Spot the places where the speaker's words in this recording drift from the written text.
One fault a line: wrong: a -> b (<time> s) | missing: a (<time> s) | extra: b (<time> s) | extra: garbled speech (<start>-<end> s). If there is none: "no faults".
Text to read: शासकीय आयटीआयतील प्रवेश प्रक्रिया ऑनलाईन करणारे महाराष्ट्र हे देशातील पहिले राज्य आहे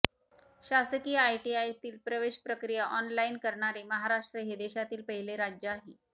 no faults